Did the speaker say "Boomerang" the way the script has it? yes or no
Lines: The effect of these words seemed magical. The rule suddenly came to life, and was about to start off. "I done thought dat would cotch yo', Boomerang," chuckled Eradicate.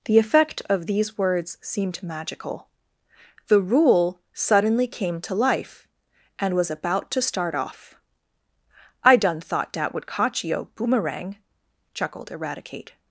yes